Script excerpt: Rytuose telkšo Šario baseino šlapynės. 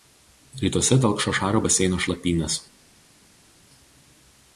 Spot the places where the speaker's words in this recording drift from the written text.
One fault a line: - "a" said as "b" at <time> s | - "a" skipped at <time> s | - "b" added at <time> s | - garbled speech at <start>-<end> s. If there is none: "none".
none